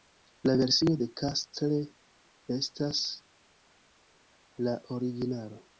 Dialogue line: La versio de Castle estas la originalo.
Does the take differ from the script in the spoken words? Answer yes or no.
no